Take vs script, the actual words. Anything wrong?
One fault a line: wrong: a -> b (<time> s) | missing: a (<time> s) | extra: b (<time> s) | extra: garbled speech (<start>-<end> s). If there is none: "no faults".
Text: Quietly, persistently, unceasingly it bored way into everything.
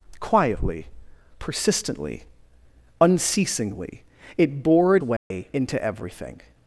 no faults